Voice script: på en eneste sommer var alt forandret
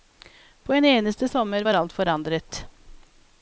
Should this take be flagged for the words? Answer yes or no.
no